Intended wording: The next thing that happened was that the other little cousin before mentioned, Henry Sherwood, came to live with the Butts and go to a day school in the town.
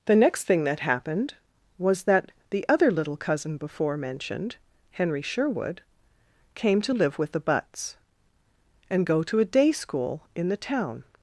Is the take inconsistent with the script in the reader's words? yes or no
no